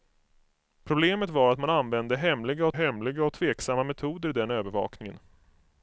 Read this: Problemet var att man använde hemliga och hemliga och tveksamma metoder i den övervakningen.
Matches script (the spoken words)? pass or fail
pass